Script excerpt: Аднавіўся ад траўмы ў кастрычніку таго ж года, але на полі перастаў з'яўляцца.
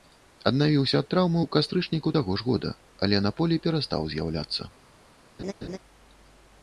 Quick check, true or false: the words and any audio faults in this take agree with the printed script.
false